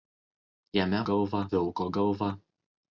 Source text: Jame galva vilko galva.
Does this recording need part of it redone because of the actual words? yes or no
no